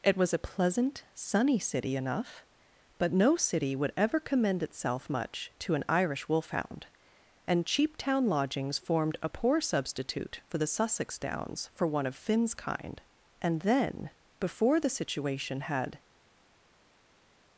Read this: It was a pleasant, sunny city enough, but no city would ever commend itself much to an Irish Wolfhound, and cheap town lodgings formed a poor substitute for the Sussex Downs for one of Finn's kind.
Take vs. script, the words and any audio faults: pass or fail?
fail